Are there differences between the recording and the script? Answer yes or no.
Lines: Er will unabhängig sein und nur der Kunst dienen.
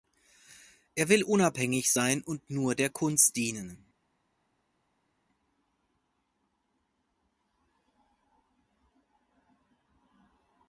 no